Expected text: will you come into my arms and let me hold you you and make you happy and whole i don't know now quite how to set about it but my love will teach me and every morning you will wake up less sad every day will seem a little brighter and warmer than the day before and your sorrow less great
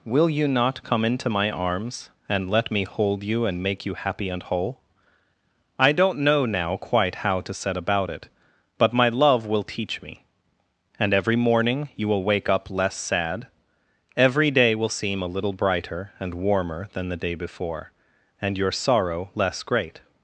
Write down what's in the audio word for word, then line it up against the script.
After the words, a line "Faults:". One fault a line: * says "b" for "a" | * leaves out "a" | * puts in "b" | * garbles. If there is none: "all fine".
will you not come into my arms and let me hold you and make you happy and whole i don't know now quite how to set about it but my love will teach me and every morning you will wake up less sad every day will seem a little brighter and warmer than the day before and your sorrow less great
Faults:
* puts in "not"
* leaves out "you"